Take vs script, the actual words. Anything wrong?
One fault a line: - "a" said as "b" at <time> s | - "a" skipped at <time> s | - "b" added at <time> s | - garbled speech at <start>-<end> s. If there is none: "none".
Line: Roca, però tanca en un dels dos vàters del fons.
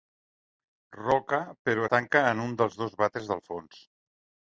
none